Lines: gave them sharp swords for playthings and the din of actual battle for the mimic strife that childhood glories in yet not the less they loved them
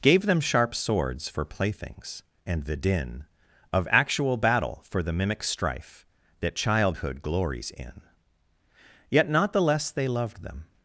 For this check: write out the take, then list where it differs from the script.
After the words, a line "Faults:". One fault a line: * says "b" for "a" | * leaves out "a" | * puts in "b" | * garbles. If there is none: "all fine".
gave them sharp swords for playthings and the din of actual battle for the mimic strife that childhood glories in yet not the less they loved them
Faults:
all fine